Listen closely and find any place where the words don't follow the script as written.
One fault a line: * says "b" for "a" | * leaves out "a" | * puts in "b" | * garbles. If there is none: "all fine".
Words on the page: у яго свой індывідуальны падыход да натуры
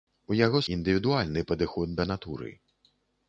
* leaves out "свой"